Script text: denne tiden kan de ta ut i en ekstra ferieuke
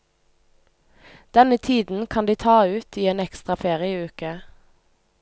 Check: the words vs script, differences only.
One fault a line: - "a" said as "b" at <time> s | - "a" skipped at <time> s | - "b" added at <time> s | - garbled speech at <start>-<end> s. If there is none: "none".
none